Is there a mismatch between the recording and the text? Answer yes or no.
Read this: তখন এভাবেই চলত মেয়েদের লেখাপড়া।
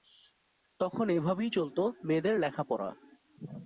no